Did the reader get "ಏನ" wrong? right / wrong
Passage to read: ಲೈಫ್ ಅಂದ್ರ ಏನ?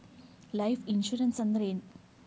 right